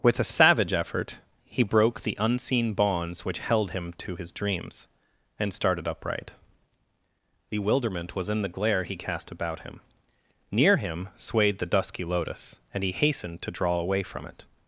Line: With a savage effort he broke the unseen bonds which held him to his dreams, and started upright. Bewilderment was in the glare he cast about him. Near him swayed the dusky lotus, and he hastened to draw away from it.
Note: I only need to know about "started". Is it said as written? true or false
true